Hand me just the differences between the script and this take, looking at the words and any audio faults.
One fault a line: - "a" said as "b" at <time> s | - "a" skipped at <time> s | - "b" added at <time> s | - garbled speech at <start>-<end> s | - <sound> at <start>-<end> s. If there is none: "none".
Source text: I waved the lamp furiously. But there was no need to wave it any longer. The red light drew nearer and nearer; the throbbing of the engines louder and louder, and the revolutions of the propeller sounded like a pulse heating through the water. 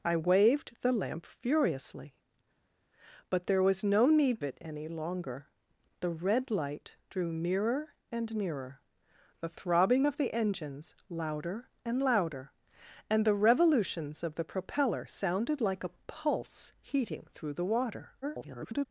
- "to wave" skipped at 4.4 s
- garbled speech at 18.2-18.9 s